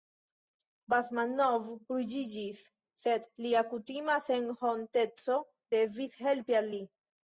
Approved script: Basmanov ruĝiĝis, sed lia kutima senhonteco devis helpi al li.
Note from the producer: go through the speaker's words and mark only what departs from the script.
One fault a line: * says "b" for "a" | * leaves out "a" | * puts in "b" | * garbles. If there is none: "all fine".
all fine